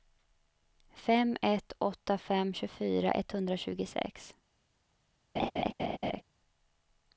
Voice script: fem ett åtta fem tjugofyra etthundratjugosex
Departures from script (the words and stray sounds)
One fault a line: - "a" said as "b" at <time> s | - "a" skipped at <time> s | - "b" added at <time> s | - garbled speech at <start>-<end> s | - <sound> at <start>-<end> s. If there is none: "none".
- laugh at 5.4-6.2 s